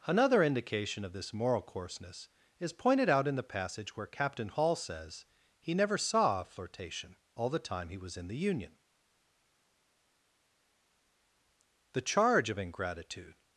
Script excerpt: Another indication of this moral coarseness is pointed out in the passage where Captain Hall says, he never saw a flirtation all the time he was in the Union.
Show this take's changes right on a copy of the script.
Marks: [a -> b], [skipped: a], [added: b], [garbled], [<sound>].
Another indication of this moral coarseness is pointed out in the passage where Captain Hall says, he never saw a flirtation all the time he was in the Union. [added: The charge of ingratitude]